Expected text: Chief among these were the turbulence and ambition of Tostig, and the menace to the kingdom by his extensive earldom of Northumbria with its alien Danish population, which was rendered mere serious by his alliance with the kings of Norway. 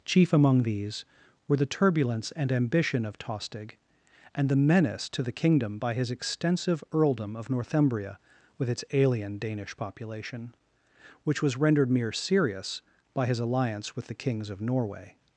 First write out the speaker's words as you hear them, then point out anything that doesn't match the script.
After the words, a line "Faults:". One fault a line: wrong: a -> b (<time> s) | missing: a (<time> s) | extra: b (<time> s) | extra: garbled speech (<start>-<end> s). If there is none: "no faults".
Chief among these were the turbulence and ambition of Tostig, and the menace to the kingdom by his extensive earldom of Northumbria with its alien Danish population, which was rendered mere serious by his alliance with the kings of Norway.
Faults:
no faults